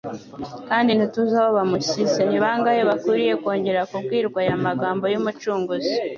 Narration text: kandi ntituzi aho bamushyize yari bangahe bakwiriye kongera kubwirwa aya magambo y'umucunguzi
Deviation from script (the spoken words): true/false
true